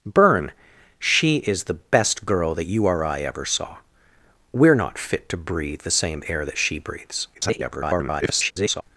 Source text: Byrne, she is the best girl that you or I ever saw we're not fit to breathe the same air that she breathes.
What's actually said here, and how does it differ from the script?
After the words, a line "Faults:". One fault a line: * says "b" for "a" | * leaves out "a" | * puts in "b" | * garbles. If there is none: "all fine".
Byrne, she is the best girl that you or I ever saw we're not fit to breathe the same air that she breathes. [garbled]
Faults:
* garbles